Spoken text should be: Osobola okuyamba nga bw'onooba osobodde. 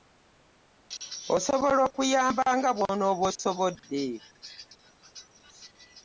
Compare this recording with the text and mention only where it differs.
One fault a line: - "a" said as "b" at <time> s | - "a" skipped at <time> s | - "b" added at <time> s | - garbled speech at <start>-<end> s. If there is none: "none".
none